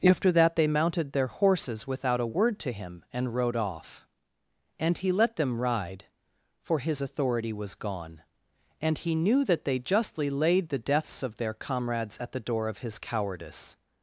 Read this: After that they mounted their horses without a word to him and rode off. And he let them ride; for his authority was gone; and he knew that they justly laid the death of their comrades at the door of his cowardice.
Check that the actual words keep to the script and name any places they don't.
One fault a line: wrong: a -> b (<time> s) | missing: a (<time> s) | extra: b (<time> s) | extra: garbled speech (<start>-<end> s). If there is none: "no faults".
wrong: death -> deaths (10.8 s)